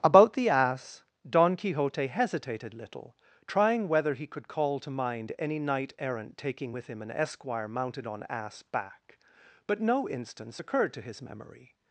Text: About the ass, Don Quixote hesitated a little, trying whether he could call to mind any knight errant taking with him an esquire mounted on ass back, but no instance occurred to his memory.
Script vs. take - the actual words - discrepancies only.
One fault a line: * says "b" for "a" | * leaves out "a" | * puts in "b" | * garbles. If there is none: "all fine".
* leaves out "a"